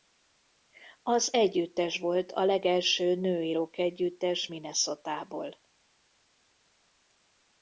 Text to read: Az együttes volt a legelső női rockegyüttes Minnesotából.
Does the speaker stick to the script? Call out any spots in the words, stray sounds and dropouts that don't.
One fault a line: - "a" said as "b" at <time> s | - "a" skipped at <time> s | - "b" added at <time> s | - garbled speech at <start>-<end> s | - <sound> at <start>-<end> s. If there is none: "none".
none